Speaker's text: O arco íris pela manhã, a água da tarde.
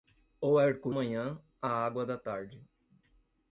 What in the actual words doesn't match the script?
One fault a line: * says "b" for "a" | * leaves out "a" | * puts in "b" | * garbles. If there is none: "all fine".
* leaves out "íris pela"